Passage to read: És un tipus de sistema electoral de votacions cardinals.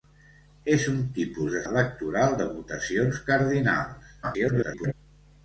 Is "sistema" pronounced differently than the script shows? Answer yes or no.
yes